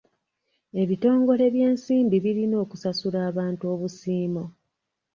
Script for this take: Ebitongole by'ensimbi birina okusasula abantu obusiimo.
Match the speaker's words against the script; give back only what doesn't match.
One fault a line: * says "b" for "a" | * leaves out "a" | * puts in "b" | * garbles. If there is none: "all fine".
all fine